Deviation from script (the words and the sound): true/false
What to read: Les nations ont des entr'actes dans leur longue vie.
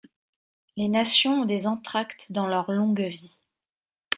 false